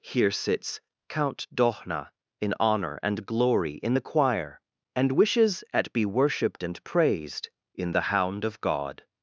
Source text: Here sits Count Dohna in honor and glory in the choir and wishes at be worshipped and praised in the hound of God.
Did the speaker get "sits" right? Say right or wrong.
right